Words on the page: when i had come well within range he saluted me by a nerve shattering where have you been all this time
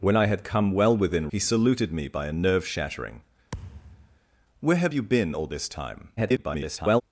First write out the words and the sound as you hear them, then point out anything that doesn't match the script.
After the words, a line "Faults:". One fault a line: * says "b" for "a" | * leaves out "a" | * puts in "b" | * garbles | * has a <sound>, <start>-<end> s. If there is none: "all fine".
when i had come well within he saluted me by a nerve shattering where have you been all this time [garbled]
Faults:
* leaves out "range"
* has a thud, 3.5-4.2 s
* garbles